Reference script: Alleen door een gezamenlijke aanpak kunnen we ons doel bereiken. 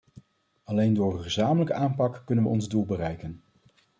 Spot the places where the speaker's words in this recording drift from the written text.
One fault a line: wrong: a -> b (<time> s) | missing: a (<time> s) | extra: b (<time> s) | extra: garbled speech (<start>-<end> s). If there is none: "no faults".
no faults